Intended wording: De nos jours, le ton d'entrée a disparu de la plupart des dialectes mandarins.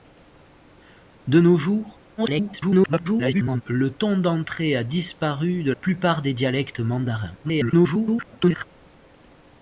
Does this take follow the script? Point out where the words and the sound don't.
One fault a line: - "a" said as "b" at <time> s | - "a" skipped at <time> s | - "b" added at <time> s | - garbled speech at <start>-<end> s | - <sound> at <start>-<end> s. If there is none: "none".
- garbled speech at 2.2-3.6 s
- "la" skipped at 5.7 s
- garbled speech at 7.4-8.6 s